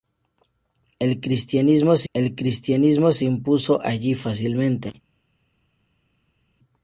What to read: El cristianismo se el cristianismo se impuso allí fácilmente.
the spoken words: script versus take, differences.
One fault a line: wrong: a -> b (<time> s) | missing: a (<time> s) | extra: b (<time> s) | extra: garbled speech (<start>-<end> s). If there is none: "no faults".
no faults